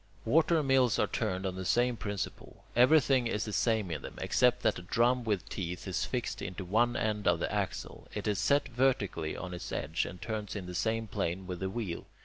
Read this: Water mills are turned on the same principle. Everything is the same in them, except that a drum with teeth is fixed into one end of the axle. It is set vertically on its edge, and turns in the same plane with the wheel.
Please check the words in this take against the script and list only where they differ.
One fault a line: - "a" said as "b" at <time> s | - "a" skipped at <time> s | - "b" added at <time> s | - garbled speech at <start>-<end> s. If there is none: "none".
none